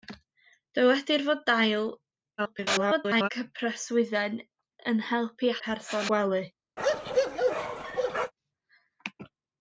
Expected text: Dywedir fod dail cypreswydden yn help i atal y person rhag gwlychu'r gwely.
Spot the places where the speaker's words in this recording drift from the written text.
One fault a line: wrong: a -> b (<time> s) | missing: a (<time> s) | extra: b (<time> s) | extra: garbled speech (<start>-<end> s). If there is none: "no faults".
extra: garbled speech (2.4-3.3 s)
missing: atal (5.6 s)
missing: rhag gwlychu'r (6.1 s)